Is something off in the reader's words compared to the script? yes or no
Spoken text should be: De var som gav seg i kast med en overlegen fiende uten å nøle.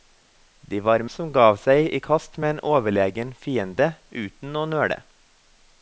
no